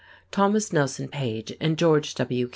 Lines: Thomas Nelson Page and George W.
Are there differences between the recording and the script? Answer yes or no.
no